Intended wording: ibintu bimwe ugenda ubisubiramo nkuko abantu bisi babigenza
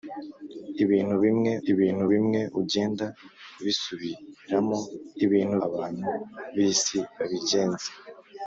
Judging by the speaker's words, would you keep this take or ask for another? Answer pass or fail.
fail